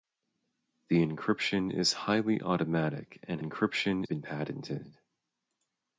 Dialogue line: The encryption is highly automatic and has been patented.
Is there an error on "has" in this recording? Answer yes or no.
yes